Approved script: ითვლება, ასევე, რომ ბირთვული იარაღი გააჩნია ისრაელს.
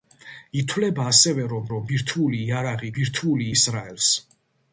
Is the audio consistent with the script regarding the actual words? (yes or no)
no